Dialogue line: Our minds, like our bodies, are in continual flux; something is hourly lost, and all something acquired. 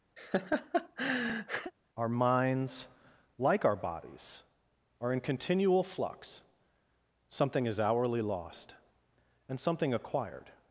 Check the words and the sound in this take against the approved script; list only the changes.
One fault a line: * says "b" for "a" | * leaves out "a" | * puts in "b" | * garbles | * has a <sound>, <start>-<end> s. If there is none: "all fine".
* has a laugh, 0.2-1.7 s
* leaves out "all"